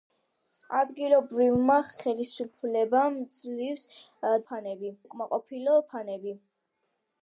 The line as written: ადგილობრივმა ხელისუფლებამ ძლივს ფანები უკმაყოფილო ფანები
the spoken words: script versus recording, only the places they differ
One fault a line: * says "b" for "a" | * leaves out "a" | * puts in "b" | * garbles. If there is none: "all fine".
all fine